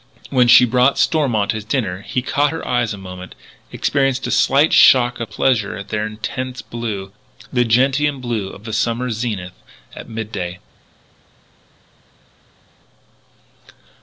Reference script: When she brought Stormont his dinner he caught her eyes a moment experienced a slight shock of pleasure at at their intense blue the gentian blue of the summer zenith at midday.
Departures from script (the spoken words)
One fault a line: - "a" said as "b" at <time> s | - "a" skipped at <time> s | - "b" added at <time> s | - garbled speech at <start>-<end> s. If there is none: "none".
- "at" skipped at 5.9 s